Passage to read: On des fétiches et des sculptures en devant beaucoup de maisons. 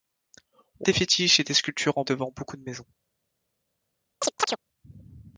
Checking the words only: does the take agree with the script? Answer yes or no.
yes